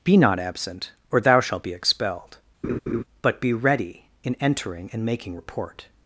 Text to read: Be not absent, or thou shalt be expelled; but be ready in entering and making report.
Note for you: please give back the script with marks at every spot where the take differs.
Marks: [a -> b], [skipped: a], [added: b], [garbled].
Be not absent, or thou shalt be expelled; but be ready in entering and making report.